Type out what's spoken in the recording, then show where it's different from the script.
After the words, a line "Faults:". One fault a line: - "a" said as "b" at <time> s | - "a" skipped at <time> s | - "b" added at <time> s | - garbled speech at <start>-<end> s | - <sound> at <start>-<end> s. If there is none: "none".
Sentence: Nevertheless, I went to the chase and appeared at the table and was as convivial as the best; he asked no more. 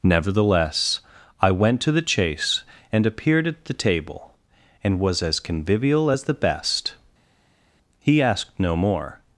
Nevertheless, I went to the chase and appeared at the table and was as convivial as the best; he asked no more.
Faults:
none